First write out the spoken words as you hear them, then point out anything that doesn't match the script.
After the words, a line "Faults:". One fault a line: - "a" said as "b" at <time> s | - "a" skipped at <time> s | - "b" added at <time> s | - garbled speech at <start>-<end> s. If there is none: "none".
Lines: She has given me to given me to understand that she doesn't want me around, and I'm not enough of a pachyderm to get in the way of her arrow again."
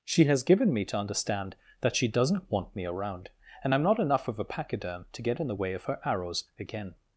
She has given me to understand that she doesn't want me around, and I'm not enough of a pachyderm to get in the way of her arrows again."
Faults:
- "given me to" skipped at 1.0 s
- "arrow" said as "arrows" at 6.1 s